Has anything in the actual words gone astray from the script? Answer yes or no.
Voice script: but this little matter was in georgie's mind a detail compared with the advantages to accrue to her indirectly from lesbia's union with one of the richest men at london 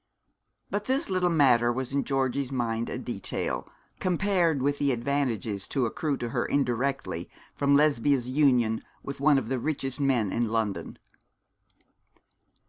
yes